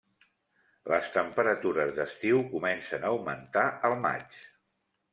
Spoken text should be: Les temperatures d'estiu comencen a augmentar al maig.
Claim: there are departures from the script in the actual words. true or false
false